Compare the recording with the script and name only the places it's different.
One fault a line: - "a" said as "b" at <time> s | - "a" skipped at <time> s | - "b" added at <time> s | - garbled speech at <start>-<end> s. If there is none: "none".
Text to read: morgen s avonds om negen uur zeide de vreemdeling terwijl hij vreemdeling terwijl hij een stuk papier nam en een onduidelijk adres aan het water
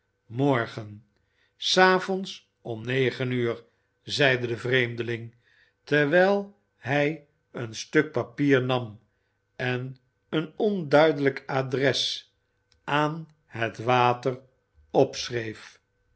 - "vreemdeling terwijl hij" skipped at 7.3 s